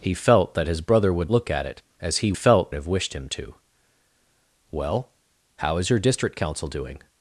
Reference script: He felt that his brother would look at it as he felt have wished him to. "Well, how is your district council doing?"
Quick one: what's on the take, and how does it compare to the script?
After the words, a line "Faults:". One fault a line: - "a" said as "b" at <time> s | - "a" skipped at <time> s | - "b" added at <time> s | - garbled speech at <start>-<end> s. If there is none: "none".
He felt that his brother would look at it as he felt have wished him to. "Well, how is your district council doing?"
Faults:
none